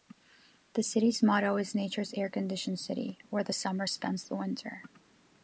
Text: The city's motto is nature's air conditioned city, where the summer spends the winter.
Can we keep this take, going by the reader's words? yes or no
yes